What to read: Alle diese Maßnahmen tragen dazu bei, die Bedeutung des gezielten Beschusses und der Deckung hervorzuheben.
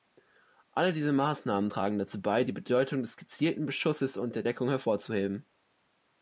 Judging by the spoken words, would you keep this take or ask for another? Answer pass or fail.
pass